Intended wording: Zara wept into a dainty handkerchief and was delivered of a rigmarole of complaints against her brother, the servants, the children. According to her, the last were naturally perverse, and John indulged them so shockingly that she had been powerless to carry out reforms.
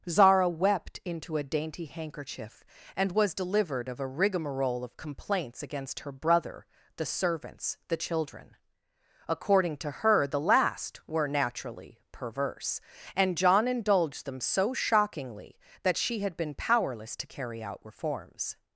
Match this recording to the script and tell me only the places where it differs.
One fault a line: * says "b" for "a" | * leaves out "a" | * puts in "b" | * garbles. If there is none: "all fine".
all fine